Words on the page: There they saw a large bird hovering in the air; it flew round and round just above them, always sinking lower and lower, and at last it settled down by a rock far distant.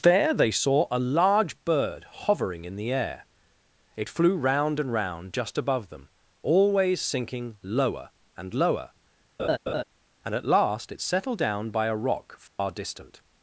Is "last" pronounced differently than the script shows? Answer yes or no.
no